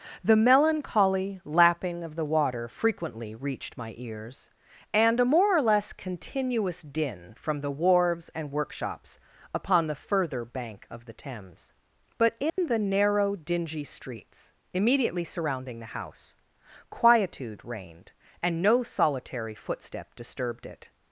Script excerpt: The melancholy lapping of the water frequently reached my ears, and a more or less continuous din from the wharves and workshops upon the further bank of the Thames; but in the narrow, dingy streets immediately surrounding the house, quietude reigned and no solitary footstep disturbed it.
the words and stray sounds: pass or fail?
fail